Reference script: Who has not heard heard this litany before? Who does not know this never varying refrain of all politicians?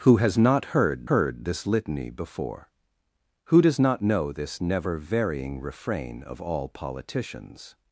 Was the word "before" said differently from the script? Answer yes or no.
no